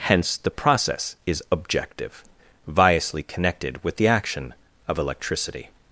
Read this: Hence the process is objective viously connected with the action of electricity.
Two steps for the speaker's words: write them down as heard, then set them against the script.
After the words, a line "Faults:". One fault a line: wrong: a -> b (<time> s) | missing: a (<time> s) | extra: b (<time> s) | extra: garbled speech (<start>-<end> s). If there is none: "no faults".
Hence the process is objective viously connected with the action of electricity.
Faults:
no faults